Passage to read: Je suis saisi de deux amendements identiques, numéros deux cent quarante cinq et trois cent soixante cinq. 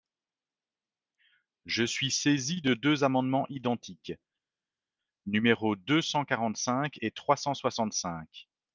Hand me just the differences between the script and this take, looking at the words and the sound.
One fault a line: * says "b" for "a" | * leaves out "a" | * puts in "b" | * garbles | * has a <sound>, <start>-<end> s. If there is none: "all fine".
all fine